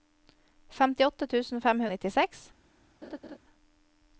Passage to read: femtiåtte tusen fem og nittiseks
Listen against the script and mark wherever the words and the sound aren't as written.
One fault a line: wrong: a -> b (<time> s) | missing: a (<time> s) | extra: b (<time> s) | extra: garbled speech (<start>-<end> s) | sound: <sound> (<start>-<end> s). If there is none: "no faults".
sound: laugh (3.0-3.4 s)